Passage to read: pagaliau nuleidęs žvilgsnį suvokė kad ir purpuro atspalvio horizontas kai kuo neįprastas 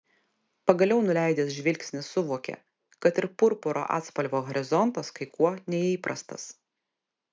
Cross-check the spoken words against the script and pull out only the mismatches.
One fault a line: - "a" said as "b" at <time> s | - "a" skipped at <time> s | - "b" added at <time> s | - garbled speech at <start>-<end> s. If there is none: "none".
none